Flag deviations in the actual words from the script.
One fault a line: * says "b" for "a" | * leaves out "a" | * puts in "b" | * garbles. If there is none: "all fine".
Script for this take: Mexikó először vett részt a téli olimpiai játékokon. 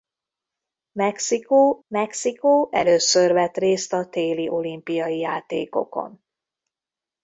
* puts in "mexikó"